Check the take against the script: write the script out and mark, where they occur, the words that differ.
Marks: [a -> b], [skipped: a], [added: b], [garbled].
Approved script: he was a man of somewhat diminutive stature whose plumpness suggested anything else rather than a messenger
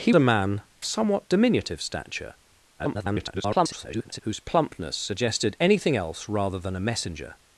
he [skipped: was] a man [skipped: of] somewhat diminutive stature [garbled] whose plumpness suggested anything else rather than a messenger